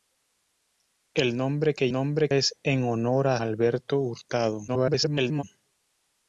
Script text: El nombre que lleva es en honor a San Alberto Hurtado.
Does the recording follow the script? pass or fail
fail